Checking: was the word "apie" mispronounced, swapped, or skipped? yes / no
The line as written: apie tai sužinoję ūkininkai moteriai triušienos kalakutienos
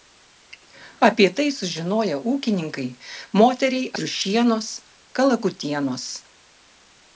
no